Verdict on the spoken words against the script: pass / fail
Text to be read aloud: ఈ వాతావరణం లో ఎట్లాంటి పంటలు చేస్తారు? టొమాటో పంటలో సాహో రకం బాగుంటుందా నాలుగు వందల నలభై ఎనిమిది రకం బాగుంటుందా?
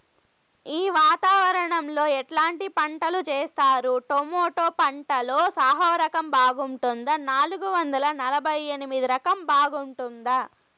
pass